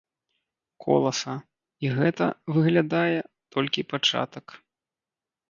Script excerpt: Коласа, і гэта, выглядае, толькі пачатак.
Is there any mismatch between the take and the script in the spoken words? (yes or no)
no